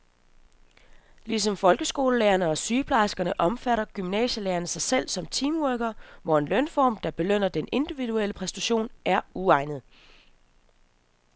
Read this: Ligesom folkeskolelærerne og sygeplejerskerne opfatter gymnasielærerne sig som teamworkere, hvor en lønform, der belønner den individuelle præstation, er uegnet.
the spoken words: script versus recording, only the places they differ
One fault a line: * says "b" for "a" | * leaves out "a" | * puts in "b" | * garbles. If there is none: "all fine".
* puts in "selv"